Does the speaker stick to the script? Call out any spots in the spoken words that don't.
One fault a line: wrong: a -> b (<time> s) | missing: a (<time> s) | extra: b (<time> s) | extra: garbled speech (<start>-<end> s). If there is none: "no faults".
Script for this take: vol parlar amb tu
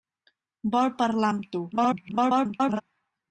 extra: garbled speech (1.7-2.8 s)